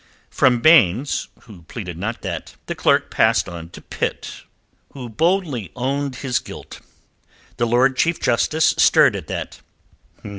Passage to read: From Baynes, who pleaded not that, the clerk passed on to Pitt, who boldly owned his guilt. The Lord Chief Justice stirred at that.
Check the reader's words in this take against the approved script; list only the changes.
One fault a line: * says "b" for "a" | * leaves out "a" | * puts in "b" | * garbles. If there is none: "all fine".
all fine